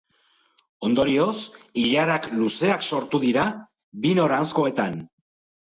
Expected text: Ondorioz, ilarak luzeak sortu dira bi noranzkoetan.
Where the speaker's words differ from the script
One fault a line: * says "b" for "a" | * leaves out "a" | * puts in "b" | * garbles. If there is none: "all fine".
all fine